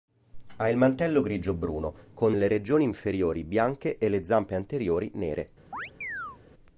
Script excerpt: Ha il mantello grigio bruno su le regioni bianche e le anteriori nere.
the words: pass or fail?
fail